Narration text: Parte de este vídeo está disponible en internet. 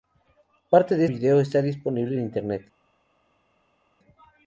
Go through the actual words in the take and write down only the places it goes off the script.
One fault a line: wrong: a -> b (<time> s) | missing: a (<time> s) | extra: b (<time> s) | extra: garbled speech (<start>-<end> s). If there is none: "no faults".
missing: este (1.1 s)